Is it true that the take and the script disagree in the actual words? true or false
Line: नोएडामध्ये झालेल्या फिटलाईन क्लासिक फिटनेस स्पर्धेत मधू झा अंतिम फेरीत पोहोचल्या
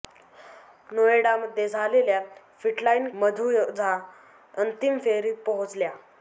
true